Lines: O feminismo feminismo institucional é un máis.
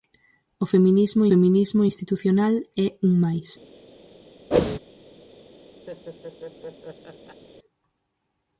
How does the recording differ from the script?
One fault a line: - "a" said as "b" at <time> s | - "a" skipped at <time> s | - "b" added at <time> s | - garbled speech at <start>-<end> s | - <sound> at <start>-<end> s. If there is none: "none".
- whoosh at 4.5-4.8 s
- laugh at 5.9-7.4 s